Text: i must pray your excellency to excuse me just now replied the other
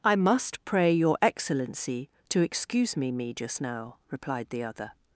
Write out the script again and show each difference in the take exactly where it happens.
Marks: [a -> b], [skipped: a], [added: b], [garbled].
i must pray your excellency to excuse me [added: me] just now replied the other